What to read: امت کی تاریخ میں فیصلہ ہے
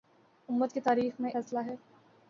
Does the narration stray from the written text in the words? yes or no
no